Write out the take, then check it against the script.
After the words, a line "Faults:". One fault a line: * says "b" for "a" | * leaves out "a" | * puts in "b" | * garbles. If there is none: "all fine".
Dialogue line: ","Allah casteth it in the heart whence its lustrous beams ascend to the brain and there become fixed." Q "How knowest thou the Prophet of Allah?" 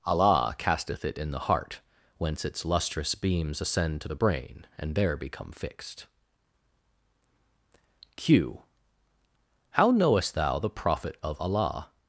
","Allah casteth it in the heart whence its lustrous beams ascend to the brain and there become fixed." Q "How knowest thou the Prophet of Allah?"
Faults:
all fine